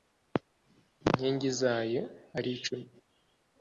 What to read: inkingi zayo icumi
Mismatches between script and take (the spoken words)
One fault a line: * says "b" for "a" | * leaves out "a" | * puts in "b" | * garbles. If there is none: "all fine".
* puts in "ari"